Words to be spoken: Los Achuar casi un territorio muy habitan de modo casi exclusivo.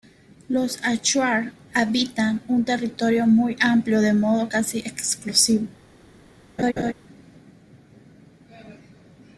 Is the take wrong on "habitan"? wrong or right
wrong